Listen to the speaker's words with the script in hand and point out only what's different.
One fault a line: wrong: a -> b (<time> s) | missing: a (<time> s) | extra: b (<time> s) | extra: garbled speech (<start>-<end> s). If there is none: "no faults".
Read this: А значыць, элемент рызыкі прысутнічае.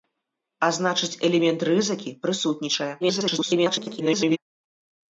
extra: garbled speech (3.0-4.4 s)